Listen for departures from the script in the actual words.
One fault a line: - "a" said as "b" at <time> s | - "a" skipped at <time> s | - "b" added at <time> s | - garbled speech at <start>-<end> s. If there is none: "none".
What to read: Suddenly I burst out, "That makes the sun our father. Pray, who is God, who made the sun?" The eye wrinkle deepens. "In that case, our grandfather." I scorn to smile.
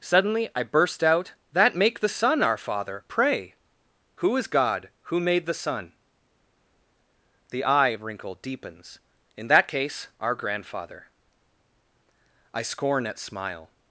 - "makes" said as "make" at 1.8 s
- "to" said as "at" at 13.1 s